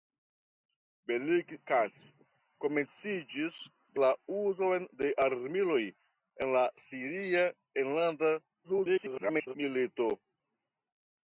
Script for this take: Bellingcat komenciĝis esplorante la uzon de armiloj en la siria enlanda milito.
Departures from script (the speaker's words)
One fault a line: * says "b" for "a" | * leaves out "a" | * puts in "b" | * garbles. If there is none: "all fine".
* leaves out "esplorante"
* garbles